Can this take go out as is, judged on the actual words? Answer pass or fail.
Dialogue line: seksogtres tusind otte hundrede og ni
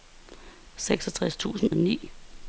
fail